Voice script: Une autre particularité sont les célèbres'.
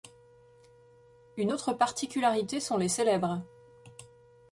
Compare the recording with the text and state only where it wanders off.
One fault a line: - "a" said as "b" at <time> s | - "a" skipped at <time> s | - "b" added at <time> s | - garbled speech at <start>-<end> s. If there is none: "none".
none